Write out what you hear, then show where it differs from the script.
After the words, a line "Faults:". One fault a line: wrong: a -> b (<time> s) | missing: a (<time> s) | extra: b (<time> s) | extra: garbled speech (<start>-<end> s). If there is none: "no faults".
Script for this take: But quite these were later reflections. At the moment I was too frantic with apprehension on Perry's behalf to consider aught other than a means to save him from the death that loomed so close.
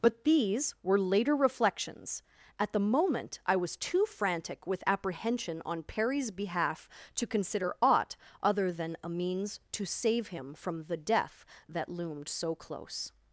But these were later reflections. At the moment I was too frantic with apprehension on Perry's behalf to consider aught other than a means to save him from the death that loomed so close.
Faults:
missing: quite (0.2 s)